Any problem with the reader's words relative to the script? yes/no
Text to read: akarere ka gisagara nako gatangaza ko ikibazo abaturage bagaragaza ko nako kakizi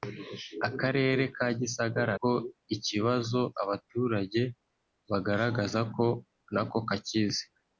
yes